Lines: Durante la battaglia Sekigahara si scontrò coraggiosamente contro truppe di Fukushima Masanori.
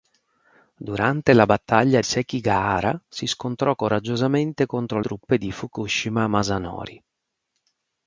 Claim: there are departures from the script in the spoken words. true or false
false